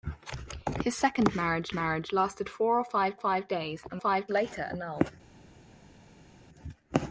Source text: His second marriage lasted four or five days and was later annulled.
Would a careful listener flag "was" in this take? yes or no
yes